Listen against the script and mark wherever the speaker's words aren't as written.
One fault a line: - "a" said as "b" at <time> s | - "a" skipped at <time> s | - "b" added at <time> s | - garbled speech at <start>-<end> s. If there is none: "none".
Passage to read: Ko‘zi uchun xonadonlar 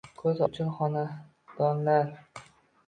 none